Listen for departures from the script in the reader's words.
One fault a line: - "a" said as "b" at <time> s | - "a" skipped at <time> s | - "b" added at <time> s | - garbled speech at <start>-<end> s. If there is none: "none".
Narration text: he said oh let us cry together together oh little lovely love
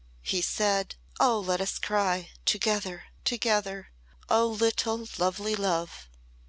none